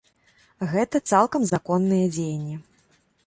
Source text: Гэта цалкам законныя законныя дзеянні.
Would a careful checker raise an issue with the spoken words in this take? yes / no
yes